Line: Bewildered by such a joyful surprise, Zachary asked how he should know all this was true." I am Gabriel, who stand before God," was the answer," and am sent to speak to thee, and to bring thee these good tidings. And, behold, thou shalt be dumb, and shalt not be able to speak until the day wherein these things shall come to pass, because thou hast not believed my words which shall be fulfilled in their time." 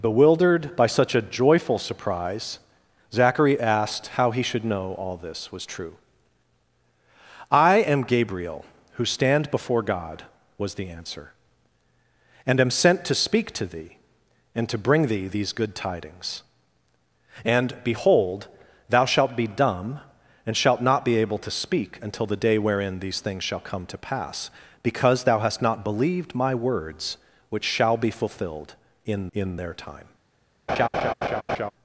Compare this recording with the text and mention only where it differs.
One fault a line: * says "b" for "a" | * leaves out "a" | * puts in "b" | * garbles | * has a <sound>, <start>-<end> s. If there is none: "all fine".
* puts in "in"
* has a laugh, 30.7-31.7 s